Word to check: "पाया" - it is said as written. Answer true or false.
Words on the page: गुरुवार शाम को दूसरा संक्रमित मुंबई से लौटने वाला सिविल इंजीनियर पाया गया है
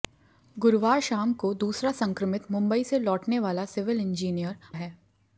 false